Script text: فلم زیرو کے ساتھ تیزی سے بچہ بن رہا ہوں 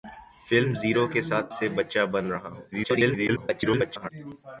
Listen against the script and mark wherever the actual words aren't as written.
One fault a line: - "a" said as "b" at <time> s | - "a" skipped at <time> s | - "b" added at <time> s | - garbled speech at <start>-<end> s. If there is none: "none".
- "تیزی" skipped at 1.5 s
- garbled speech at 2.7-4.1 s